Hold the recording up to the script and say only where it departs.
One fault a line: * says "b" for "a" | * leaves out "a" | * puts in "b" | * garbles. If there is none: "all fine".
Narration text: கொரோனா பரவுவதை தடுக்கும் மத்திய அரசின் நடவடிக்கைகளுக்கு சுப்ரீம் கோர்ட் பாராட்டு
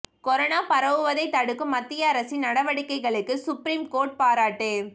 all fine